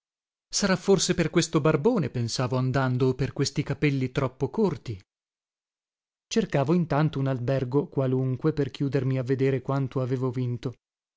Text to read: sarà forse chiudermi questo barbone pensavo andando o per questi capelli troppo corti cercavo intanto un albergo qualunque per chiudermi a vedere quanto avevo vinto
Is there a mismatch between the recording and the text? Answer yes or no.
yes